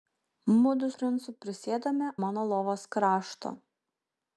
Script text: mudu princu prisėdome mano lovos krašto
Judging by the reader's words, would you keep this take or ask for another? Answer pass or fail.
pass